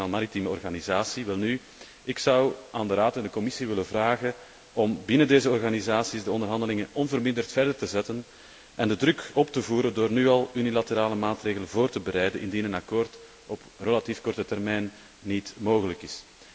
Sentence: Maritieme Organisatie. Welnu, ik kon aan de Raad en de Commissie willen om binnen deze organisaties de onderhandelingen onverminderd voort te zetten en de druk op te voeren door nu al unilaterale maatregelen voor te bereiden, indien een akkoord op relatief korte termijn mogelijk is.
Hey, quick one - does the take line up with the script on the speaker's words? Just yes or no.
no